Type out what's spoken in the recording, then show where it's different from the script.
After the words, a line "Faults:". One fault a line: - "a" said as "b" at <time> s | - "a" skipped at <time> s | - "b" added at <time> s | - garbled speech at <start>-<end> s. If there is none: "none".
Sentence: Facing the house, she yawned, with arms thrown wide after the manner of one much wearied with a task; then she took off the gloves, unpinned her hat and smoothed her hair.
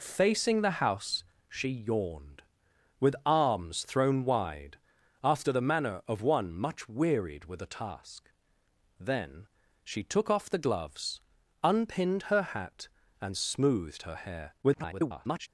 Facing the house, she yawned, with arms thrown wide after the manner of one much wearied with a task; then she took off the gloves, unpinned her hat and smoothed her hair. [garbled]
Faults:
- garbled speech at 14.6-15.5 s